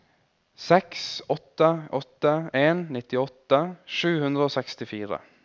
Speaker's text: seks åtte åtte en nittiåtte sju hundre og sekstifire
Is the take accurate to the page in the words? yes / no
yes